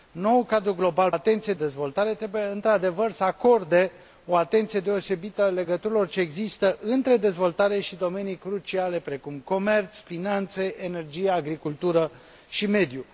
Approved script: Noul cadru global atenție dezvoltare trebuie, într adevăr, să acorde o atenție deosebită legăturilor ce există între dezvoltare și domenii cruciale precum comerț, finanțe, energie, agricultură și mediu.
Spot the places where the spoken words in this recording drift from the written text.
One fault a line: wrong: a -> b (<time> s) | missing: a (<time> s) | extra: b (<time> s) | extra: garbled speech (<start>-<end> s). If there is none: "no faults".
no faults